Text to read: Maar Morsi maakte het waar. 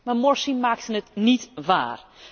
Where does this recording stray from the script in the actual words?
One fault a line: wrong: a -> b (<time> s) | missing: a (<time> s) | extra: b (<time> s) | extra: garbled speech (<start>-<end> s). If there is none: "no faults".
extra: niet (1.1 s)